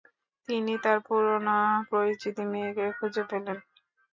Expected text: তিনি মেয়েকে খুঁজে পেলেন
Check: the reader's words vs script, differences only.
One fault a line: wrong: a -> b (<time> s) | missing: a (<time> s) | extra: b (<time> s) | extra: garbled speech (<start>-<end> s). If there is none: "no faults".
extra: তার পুরনো পরিচিত (0.8 s)